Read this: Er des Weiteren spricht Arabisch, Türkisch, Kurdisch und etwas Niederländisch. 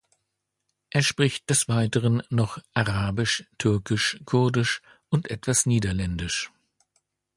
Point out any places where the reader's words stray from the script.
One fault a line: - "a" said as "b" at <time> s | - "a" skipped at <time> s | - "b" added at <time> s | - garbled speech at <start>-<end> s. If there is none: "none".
- "spricht" added at 1.0 s
- "spricht" said as "noch" at 2.3 s